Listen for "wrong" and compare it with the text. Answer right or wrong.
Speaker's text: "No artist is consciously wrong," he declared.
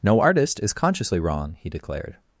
right